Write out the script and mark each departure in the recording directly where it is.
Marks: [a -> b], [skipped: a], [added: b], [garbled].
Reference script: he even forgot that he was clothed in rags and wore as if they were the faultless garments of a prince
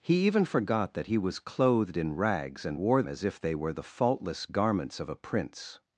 he even forgot that he was clothed in rags and wore as if they were the faultless garments of a prince